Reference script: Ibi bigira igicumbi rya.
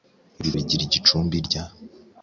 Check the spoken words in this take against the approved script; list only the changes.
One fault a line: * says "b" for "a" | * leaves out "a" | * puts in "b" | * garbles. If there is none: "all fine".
all fine